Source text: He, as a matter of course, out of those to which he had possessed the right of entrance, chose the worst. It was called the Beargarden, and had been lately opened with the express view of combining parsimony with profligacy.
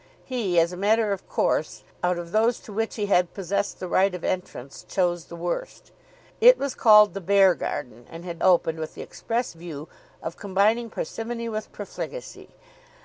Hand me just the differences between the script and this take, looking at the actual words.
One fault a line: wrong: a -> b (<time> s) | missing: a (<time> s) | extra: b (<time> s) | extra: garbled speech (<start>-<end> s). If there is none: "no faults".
missing: been lately (8.4 s)